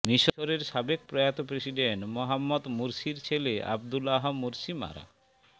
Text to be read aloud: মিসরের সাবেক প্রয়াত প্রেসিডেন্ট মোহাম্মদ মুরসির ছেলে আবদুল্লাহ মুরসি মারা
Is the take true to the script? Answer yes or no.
yes